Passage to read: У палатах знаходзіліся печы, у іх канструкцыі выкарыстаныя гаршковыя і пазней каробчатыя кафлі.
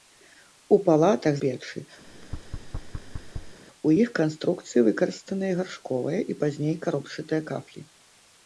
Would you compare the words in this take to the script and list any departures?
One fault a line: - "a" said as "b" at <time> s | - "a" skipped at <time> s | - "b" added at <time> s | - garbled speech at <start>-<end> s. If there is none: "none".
- "знаходзіліся" skipped at 1.4 s